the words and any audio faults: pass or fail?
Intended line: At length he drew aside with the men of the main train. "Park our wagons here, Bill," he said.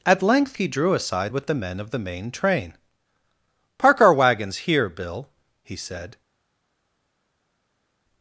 pass